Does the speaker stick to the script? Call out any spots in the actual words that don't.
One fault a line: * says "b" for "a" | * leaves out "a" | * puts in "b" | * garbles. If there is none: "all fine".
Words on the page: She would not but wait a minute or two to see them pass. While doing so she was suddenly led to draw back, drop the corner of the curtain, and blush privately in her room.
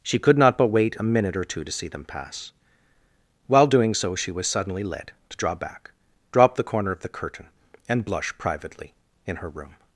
* says "could" for "would"